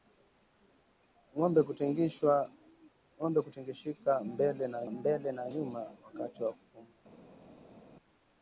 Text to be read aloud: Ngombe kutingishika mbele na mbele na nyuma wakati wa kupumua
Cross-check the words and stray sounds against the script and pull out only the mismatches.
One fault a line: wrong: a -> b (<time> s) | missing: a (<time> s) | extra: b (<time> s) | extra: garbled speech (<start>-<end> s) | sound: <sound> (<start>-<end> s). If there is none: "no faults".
no faults